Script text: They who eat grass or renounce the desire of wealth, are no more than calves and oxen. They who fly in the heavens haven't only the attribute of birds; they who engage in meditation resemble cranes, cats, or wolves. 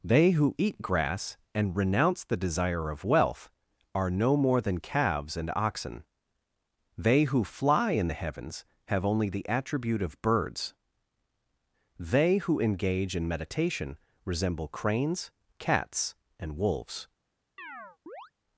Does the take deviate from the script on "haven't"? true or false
true